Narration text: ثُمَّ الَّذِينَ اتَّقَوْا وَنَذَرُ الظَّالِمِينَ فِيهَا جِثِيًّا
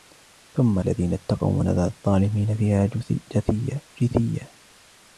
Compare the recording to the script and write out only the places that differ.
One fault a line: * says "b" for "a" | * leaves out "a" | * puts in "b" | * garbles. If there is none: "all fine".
all fine